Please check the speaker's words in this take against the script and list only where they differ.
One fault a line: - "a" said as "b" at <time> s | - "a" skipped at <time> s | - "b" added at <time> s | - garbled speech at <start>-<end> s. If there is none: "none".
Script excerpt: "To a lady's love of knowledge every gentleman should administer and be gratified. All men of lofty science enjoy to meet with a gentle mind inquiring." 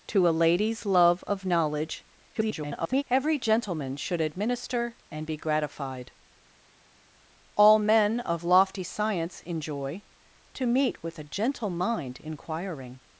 - garbled speech at 2.3-3.0 s